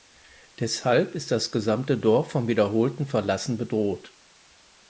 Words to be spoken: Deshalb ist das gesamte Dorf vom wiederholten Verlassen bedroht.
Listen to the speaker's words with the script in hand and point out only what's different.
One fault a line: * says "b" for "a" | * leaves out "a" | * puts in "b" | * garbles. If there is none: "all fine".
all fine